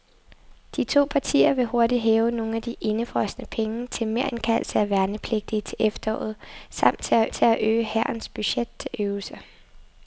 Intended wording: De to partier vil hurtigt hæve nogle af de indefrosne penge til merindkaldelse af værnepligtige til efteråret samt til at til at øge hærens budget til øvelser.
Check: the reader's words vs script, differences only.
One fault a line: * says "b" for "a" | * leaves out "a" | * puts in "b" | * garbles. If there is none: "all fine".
all fine